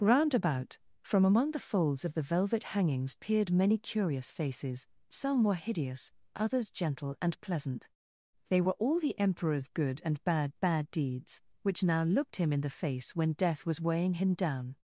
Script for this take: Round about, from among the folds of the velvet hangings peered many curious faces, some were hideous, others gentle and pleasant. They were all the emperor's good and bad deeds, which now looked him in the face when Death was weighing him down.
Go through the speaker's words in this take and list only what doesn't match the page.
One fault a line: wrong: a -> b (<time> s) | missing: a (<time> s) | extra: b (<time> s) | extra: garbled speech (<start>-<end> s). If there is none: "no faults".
extra: bad (10.6 s)